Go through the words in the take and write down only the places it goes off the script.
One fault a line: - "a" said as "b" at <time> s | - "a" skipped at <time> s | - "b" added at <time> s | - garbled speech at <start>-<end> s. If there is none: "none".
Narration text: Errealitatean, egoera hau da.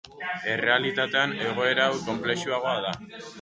- "konplexuagoa" added at 2.1 s